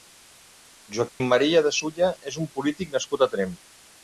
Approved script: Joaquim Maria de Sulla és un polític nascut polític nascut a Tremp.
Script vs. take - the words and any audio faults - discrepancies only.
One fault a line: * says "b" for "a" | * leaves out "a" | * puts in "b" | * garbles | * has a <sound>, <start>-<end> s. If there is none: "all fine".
* has a dropout, 1.1-1.2 s
* leaves out "polític nascut"